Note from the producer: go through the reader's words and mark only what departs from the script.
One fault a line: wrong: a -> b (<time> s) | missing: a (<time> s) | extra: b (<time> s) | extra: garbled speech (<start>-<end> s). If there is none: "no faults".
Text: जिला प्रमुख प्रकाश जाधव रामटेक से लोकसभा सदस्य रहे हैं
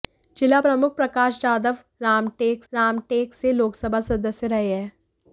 extra: रामटेक (2.7 s)